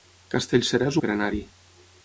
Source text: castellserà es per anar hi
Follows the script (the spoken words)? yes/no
yes